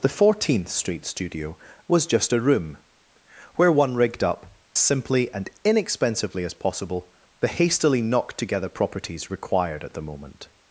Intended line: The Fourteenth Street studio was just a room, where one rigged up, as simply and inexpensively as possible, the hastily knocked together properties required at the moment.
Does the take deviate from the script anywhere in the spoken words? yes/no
yes